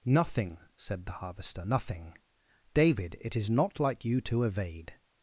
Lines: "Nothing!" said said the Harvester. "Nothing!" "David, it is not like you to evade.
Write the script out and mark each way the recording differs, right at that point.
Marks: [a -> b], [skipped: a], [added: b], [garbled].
"Nothing!" said [skipped: said] the Harvester. "Nothing!" "David, it is not like you to evade.